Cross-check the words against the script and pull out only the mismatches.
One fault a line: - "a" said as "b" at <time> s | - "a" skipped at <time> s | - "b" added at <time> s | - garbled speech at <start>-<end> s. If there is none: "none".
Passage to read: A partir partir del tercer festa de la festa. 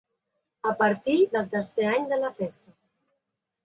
- "partir" skipped at 1.2 s
- "festa" said as "any" at 2.0 s